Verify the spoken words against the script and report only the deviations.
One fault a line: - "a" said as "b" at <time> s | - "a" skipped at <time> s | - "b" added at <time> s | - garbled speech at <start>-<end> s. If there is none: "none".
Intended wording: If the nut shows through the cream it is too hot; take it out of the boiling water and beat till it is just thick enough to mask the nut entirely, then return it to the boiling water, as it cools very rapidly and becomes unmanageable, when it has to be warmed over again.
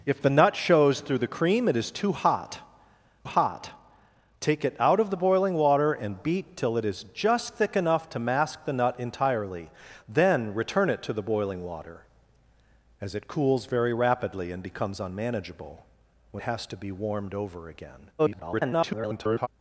- "hot" added at 3.2 s
- "it" skipped at 16.4 s
- garbled speech at 18.2-19.5 s